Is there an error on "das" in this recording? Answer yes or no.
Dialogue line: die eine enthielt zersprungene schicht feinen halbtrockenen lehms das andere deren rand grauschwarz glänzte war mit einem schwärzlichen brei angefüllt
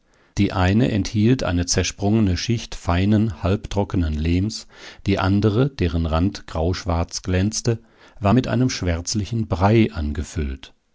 yes